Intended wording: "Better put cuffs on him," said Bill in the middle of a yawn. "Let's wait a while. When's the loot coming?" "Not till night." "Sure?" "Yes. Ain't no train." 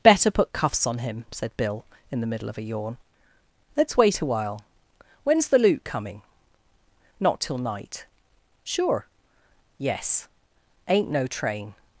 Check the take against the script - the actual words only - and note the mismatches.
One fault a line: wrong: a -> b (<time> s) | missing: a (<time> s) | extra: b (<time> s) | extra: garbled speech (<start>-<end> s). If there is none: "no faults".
no faults